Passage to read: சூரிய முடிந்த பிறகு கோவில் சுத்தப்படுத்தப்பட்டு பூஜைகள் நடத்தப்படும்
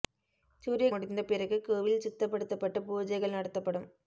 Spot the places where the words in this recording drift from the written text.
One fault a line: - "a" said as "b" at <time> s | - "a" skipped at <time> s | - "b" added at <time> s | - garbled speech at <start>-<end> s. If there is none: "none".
none